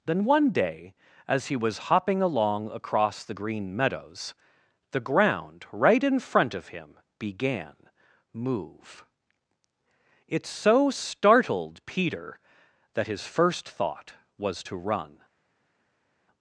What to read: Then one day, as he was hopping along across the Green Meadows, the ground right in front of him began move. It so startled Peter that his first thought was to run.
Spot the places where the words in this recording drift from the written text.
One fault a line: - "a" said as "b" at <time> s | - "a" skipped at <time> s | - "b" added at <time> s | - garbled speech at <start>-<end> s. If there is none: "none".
none